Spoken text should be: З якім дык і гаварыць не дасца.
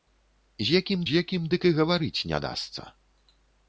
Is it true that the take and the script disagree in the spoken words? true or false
true